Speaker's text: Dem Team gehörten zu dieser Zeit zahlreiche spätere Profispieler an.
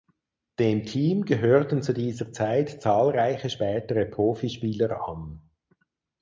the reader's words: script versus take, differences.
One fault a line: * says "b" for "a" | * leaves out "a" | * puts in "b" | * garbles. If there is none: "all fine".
all fine